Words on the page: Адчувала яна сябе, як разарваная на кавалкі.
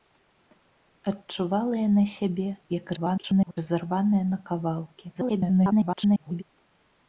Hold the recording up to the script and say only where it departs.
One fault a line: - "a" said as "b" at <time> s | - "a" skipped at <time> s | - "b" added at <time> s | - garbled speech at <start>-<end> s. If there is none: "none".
- garbled speech at 3.0-3.6 s
- garbled speech at 5.1-6.4 s